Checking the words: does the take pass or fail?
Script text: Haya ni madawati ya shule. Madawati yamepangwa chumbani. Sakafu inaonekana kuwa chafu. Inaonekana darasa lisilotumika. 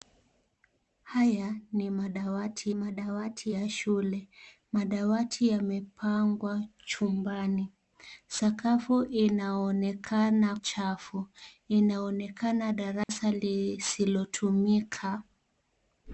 fail